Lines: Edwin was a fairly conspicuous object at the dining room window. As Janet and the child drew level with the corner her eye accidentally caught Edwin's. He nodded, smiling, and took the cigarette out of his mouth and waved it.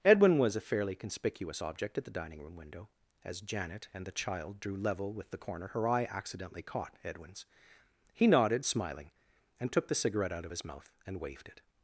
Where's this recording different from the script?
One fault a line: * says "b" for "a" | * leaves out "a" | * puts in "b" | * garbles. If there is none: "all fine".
all fine